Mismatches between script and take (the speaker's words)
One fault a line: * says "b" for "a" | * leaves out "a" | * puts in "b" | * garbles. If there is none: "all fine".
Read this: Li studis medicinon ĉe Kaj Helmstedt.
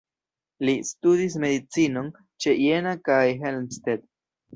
* puts in "Jena"